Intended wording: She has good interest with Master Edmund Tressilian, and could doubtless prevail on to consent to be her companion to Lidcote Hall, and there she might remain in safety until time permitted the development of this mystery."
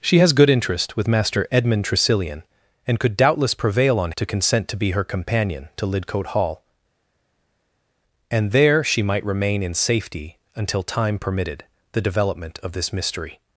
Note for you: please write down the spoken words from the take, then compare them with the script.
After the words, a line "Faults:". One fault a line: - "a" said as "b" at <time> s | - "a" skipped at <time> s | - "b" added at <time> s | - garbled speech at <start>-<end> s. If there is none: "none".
She has good interest with Master Edmund Tressilian, and could doubtless prevail on to consent to be her companion to Lidcote Hall, and there she might remain in safety until time permitted the development of this mystery."
Faults:
none